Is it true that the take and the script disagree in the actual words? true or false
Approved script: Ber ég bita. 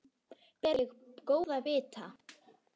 true